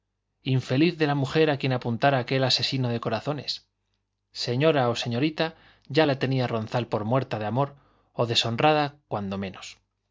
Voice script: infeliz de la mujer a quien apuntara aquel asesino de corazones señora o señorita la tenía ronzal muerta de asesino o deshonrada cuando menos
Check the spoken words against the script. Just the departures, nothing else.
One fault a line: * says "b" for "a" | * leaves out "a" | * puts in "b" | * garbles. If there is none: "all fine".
* puts in "ya"
* puts in "por"
* says "amor" for "asesino"